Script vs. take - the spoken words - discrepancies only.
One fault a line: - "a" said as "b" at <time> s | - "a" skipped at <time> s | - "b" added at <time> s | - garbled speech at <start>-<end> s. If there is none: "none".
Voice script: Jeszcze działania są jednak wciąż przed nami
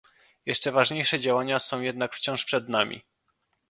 - "ważniejsze" added at 0.7 s